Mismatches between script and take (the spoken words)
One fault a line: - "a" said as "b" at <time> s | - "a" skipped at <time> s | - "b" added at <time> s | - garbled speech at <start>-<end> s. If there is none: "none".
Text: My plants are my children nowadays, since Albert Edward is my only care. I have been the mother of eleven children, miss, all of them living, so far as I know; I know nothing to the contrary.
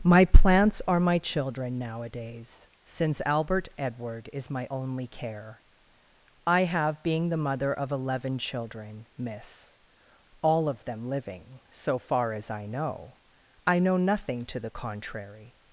- "been" said as "being" at 7.0 s